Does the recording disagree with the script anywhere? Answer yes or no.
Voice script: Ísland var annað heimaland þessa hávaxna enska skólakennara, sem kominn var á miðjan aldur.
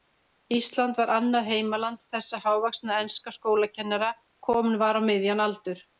yes